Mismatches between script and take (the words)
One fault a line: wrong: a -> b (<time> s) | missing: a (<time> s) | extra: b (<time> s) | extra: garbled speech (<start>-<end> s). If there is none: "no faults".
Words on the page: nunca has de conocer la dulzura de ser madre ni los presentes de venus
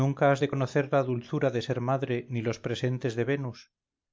no faults